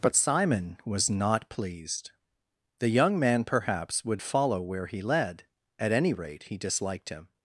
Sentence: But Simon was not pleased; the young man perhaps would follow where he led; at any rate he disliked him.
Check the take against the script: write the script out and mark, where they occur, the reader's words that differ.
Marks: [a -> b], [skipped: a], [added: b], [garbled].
But Simon was not pleased; the young man perhaps would follow where he led; at any rate he disliked him.